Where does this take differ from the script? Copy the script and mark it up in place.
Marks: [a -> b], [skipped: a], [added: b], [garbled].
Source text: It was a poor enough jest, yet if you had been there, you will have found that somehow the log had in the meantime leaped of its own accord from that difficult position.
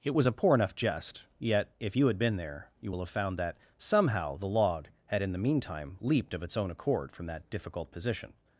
It was a poor enough jest, yet if you had been there, you will have found that somehow the log had in the meantime leaped of its own accord from that difficult position.